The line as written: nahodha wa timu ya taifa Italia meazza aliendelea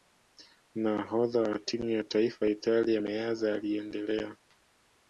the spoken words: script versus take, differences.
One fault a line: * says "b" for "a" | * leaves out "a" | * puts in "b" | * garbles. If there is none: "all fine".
all fine